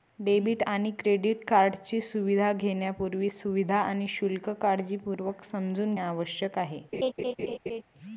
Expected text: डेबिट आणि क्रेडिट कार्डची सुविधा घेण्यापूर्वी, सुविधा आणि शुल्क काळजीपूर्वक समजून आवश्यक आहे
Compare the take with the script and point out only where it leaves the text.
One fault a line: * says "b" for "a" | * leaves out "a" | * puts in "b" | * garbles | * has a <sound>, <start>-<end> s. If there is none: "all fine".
* has a laugh, 6.9-7.8 s